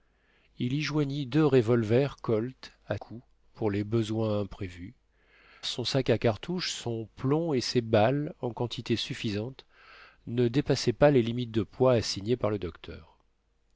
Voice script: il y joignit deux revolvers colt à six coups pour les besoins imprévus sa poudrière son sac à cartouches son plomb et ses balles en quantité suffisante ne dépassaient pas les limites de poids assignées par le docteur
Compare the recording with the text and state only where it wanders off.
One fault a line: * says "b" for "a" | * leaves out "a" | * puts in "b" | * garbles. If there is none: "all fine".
* leaves out "six"
* leaves out "sa poudrière"